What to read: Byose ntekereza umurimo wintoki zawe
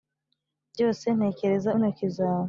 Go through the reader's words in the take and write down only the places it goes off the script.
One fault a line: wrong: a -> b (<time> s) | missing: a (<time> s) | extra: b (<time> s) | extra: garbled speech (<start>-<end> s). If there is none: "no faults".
missing: umurimo (1.7 s)